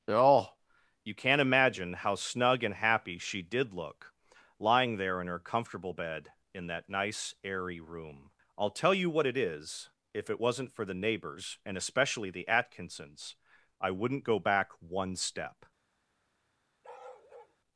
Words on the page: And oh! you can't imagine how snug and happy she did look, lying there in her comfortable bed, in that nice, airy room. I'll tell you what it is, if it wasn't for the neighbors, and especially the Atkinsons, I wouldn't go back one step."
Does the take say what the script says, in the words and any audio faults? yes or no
no